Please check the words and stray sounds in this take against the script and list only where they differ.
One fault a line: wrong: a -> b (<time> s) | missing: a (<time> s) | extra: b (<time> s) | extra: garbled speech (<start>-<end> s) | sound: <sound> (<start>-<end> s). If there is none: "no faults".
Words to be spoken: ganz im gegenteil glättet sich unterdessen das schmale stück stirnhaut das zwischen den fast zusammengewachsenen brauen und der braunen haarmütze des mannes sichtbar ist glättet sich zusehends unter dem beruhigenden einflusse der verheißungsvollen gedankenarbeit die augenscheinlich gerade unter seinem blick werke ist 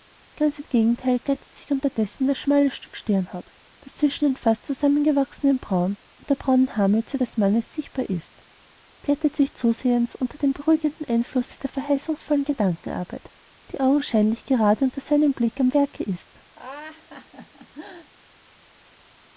extra: am (15.6 s)
sound: laugh (16.6-18.1 s)